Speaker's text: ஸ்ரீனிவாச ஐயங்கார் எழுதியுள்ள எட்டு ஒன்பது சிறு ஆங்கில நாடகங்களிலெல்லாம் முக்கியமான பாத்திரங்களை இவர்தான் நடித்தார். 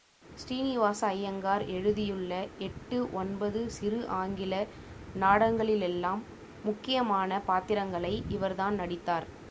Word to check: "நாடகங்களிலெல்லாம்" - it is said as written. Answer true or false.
true